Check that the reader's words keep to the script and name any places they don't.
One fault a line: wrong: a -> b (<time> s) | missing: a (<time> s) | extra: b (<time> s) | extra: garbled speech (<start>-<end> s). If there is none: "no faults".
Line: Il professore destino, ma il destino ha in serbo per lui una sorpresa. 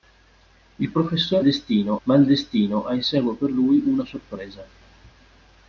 no faults